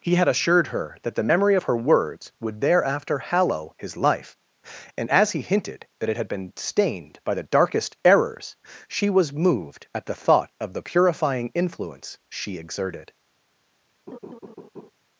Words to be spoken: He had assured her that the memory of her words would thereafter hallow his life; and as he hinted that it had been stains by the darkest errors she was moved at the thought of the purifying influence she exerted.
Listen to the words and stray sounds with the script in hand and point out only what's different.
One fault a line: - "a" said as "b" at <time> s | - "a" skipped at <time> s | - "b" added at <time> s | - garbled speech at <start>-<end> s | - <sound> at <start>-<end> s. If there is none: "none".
- "stains" said as "stained" at 6.5 s
- laugh at 14.1-14.9 s